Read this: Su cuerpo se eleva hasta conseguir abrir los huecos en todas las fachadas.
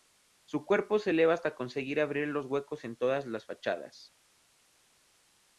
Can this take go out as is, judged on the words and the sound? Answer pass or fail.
pass